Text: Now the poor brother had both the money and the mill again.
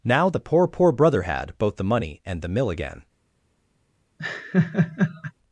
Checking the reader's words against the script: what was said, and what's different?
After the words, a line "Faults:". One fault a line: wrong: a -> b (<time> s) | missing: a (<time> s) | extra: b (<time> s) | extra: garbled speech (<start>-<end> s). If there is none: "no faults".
Now the poor poor brother had both the money and the mill again.
Faults:
extra: poor (0.7 s)